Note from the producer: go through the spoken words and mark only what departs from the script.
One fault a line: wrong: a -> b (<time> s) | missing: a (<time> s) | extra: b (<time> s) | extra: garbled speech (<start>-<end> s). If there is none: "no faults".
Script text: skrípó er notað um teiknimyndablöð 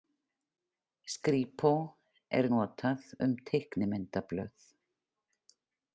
no faults